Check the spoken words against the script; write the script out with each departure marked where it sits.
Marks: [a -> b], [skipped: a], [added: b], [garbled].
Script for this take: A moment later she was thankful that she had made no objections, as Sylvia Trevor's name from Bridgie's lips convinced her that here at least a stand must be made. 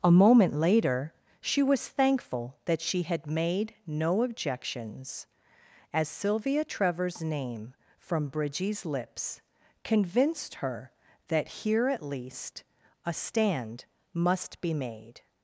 A moment later she was thankful that she had made no objections, as Sylvia Trevor's name from Bridgie's lips convinced her that here at least a stand must be made.